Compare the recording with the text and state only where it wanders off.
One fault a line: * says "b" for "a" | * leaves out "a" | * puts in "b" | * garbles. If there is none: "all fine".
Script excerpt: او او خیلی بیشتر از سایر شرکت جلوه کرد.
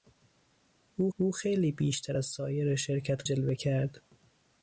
all fine